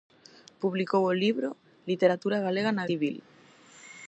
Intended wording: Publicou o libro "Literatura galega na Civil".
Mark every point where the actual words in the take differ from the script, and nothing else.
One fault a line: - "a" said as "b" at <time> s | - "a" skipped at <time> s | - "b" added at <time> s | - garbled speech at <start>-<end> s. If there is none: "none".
none